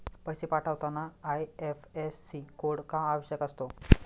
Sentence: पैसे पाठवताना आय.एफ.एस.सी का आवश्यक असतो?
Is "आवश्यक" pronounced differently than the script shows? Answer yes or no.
no